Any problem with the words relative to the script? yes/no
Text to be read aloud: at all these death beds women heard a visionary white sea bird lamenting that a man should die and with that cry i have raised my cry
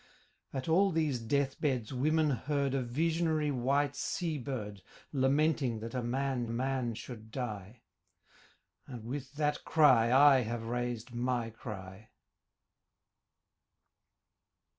yes